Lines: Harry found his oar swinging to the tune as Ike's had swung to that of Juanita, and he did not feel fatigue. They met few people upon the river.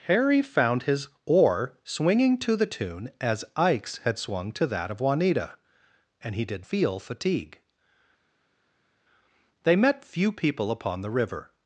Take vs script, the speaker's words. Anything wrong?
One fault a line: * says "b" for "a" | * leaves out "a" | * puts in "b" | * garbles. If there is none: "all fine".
* leaves out "not"